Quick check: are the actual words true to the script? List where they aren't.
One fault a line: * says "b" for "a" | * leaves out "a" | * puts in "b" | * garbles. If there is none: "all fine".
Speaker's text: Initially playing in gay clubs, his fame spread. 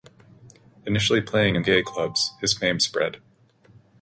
all fine